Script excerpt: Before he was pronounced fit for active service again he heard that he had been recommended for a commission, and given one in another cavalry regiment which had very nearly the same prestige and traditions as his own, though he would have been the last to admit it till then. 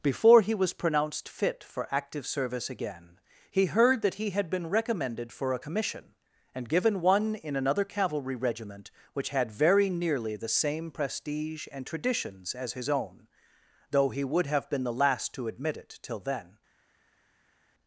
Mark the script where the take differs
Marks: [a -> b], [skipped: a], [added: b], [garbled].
Before he was pronounced fit for active service again he heard that he had been recommended for a commission, and given one in another cavalry regiment which had very nearly the same prestige and traditions as his own, though he would have been the last to admit it till then.